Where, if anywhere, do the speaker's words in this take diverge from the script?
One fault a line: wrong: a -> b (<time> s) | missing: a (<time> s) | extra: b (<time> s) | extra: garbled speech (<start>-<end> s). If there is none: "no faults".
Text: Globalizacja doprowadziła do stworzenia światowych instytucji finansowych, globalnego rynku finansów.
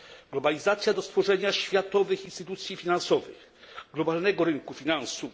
missing: doprowadziła (0.9 s)